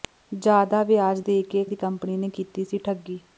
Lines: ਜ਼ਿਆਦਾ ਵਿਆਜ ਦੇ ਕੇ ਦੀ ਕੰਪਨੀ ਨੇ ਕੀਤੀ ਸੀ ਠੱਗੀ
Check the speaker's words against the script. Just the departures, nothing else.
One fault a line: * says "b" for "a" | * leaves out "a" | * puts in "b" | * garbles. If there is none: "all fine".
all fine